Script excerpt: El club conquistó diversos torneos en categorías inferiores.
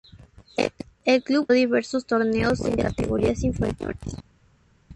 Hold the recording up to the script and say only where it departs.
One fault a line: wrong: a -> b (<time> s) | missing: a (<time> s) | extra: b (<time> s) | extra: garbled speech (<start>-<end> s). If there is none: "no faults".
missing: conquistó (1.5 s)